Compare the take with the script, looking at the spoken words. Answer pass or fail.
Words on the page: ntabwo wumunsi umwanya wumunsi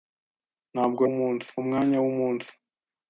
pass